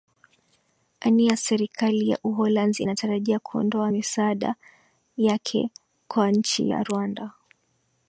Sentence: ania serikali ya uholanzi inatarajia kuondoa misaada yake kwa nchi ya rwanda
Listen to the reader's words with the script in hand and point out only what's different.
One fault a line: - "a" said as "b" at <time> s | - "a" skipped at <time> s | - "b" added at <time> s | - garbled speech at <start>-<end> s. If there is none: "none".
none